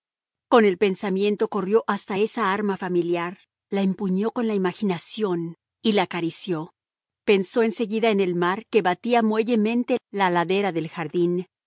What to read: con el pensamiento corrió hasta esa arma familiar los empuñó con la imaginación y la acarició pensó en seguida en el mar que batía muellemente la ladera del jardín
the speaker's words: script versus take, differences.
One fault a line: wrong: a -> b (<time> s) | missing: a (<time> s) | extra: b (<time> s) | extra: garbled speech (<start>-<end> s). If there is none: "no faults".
wrong: los -> la (3.7 s)